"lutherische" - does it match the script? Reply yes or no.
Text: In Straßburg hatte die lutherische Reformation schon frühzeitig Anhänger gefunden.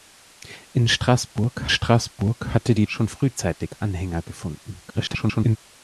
no